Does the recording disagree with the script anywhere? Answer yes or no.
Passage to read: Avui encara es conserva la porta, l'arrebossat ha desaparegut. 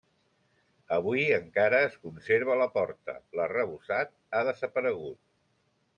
no